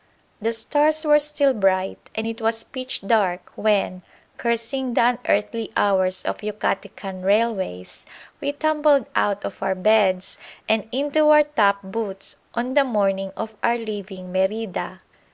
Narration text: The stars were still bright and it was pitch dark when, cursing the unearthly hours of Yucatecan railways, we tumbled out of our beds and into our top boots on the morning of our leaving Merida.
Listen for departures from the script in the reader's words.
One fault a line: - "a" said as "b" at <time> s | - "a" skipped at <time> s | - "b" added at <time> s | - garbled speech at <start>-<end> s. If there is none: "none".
none